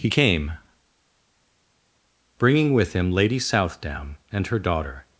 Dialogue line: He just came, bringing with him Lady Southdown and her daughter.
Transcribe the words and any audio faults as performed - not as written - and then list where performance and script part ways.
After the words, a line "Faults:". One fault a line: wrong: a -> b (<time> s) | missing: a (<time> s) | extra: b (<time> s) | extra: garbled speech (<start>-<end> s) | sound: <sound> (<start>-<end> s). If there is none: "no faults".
He came, bringing with him Lady Southdown and her daughter.
Faults:
missing: just (0.1 s)